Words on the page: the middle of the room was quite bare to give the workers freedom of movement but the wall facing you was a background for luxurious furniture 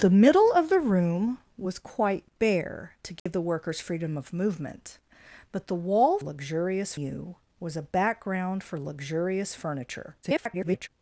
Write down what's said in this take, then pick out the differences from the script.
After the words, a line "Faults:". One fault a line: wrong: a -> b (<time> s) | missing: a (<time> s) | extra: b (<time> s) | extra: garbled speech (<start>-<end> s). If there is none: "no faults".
the middle of the room was quite bare to give the workers freedom of movement but the wall luxurious you was a background for luxurious furniture [garbled]
Faults:
wrong: facing -> luxurious (6.2 s)
extra: garbled speech (10.2-10.9 s)